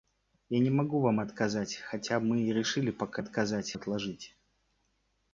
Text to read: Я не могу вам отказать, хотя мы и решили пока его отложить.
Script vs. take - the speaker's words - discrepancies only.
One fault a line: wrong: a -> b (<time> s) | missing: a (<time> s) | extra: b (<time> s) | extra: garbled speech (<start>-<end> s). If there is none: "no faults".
wrong: его -> отказать (3.2 s)